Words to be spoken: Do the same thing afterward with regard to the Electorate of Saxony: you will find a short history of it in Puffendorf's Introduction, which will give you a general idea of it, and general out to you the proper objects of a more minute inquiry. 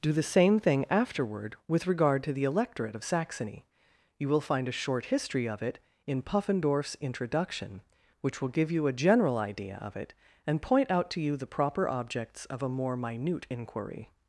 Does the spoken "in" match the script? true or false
true